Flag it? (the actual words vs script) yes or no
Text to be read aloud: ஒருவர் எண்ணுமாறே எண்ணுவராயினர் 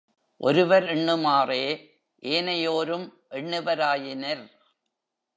yes